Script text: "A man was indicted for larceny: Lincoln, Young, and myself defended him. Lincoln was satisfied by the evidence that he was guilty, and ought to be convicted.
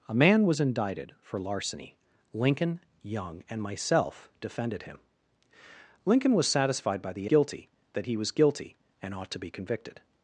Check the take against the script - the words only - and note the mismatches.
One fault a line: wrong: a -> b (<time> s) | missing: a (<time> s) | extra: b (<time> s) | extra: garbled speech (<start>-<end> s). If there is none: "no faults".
wrong: evidence -> guilty (7.2 s)